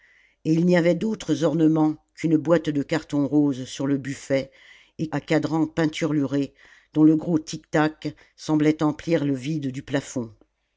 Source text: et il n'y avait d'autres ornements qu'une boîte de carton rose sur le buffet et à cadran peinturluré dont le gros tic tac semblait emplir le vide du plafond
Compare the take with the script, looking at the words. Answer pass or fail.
pass